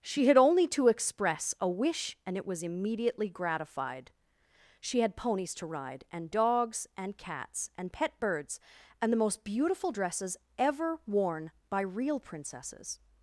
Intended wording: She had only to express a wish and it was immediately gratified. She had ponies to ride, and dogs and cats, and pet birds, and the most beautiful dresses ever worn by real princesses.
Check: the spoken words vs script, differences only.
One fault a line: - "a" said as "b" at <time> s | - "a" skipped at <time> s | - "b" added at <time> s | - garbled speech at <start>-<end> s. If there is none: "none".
none